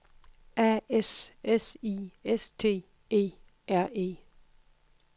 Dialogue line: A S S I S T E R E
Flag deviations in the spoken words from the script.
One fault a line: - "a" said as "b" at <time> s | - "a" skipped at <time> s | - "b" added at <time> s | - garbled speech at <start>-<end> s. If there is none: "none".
none